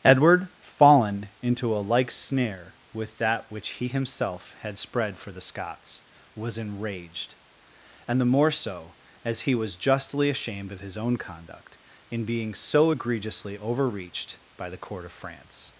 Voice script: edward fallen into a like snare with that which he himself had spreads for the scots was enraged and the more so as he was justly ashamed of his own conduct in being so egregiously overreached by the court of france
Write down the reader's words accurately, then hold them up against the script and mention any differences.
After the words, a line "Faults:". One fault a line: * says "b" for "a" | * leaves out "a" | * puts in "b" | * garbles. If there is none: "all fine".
edward fallen into a like snare with that which he himself had spread for the scots was enraged and the more so as he was justly ashamed of his own conduct in being so egregiously overreached by the court of france
Faults:
* says "spread" for "spreads"